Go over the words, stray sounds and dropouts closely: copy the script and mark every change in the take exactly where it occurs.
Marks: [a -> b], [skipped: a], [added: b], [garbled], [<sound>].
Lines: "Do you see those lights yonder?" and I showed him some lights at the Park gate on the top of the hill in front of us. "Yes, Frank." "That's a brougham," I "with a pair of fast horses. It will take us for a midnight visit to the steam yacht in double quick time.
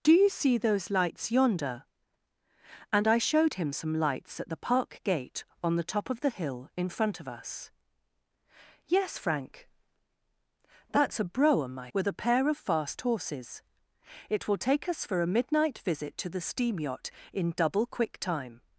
"Do you see those lights yonder?" and I showed him some lights at the Park gate on the top of the hill in front of us. "Yes, Frank." "That's a brougham," I "with a pair of fast horses. It will take us for a midnight visit to the steam yacht in double quick time.